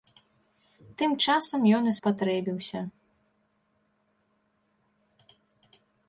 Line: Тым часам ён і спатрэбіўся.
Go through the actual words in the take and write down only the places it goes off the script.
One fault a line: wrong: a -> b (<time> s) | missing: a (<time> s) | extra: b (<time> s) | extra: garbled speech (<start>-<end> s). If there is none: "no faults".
no faults